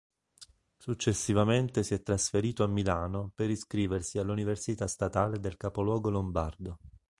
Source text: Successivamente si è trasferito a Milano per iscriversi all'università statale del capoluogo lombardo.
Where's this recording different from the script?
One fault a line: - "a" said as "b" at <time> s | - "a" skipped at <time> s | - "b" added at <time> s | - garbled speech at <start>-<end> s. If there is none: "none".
none